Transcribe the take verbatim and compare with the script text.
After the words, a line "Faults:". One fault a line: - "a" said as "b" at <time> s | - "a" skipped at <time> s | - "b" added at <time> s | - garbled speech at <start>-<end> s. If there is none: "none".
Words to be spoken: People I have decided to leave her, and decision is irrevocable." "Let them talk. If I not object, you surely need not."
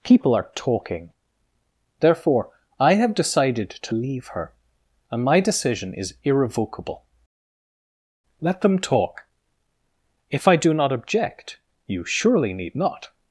People are talking. Therefore, I have decided to leave her, and my decision is irrevocable." "Let them talk. If I do not object, you surely need not."
Faults:
- "are talking Therefore" added at 0.3 s
- "my" added at 5.2 s
- "do" added at 10.6 s